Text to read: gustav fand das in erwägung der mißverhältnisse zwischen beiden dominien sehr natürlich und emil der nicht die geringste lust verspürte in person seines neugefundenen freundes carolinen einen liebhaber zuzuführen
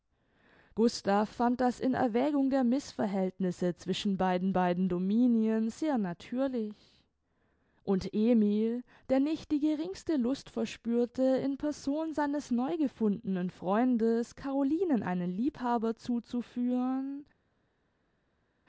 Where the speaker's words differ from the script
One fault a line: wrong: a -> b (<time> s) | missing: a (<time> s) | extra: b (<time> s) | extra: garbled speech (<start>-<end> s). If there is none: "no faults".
extra: beiden (4.5 s)